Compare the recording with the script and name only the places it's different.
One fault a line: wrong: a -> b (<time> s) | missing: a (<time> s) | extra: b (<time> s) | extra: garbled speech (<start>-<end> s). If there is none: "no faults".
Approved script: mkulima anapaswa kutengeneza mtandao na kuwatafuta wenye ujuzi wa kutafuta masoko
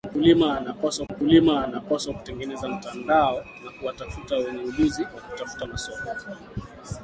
extra: mkulima anapaswa (1.1 s)